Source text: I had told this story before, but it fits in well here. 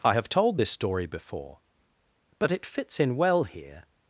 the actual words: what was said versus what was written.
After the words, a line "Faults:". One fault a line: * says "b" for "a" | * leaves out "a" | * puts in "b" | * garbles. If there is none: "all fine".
I have told this story before, but it fits in well here.
Faults:
* says "have" for "had"